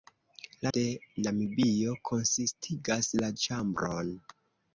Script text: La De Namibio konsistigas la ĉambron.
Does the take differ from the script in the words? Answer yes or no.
no